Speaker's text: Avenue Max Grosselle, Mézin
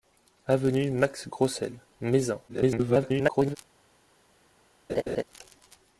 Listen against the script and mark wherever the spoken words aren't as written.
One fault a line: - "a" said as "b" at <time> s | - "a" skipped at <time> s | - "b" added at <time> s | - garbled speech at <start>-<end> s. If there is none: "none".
- garbled speech at 2.5-3.6 s